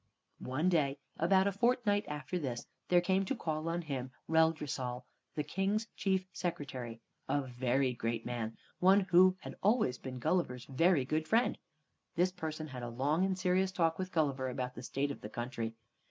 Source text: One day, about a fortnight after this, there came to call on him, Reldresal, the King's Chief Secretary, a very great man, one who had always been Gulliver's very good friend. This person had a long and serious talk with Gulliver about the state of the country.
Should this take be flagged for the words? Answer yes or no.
no